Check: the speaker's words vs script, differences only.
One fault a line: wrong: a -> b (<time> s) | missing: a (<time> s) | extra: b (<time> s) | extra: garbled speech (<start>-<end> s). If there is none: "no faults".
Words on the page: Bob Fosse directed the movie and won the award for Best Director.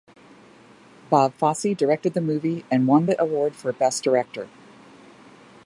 no faults